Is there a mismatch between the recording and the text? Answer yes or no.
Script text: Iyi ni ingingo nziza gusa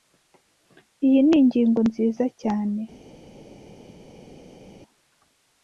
yes